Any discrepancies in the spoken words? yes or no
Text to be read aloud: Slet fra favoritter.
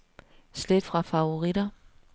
no